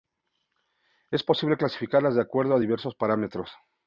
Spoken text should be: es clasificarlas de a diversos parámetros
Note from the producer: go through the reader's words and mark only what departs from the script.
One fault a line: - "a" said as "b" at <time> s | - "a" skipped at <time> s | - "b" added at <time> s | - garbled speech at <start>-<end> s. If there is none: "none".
- "posible" added at 1.2 s
- "acuerdo" added at 2.2 s